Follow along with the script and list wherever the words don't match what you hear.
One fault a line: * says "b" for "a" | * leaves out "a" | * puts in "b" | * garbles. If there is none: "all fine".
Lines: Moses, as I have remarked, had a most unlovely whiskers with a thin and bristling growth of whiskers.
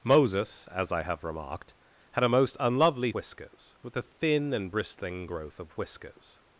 all fine